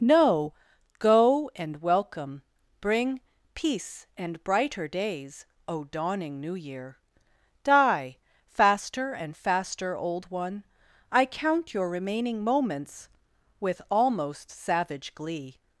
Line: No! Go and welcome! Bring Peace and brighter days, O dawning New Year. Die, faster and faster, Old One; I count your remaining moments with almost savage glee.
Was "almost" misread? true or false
false